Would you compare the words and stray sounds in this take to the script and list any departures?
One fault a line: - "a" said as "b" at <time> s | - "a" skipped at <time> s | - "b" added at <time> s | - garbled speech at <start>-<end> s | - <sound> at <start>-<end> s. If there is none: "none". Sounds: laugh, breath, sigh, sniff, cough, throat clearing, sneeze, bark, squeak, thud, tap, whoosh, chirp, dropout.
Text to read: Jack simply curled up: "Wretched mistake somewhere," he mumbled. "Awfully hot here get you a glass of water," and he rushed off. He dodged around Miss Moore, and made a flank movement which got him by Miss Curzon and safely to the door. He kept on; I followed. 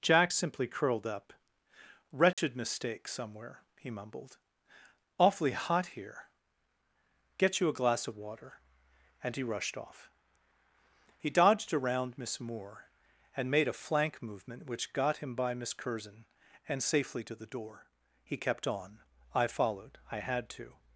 - dropout at 2.3-2.4 s
- "I had to" added at 20.1 s